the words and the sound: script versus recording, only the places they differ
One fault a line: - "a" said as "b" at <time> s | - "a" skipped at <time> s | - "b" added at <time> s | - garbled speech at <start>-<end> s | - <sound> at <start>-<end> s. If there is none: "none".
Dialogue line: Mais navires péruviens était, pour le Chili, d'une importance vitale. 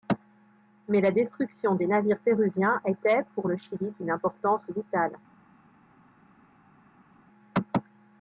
- "la destruction des" added at 1.0 s